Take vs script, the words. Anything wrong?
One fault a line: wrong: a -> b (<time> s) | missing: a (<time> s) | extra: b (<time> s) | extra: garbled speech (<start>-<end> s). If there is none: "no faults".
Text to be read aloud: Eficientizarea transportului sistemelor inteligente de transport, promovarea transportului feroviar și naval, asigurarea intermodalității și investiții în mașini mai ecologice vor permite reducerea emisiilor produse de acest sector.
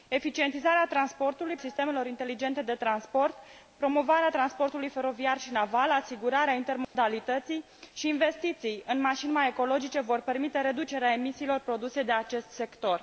no faults